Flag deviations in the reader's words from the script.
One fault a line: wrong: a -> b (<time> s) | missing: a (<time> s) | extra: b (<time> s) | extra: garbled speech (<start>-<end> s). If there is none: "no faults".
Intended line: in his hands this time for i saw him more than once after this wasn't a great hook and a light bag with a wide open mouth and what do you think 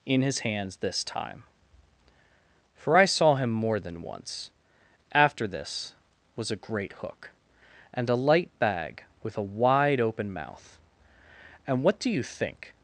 wrong: wasn't -> was (6.3 s)